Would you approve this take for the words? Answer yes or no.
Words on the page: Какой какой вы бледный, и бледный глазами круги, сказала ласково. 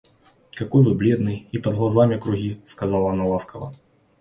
no